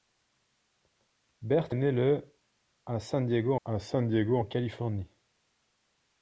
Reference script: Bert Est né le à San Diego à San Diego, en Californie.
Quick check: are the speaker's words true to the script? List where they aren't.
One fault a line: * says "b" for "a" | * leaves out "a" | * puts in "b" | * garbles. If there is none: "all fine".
all fine